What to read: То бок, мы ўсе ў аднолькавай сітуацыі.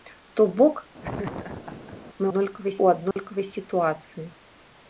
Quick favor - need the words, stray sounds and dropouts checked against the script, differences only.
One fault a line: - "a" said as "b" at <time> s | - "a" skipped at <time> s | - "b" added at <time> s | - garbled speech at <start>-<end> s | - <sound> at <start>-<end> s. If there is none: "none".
- laugh at 1.0-2.0 s
- "ўсе" said as "аднолькавай" at 2.2 s
- dropout at 3.1-3.2 s